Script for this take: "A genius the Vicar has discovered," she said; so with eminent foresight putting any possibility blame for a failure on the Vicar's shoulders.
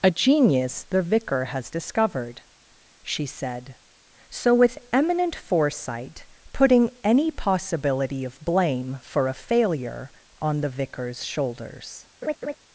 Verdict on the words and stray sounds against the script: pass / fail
fail